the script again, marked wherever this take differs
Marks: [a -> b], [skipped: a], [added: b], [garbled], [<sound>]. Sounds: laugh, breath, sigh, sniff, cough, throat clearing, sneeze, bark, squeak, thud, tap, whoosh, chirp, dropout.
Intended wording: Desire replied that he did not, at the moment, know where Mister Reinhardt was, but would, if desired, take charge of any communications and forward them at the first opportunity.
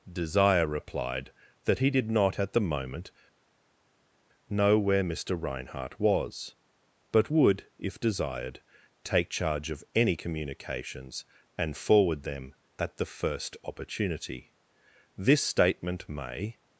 Desire replied that he did not, at the moment, know where Mister Reinhardt was, but would, if desired, take charge of any communications and forward them at the first opportunity. [added: This statement may]